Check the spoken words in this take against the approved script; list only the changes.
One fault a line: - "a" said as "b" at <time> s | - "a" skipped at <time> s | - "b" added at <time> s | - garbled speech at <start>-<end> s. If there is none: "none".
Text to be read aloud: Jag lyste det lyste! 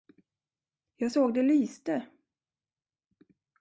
- "lyste" said as "såg" at 1.1 s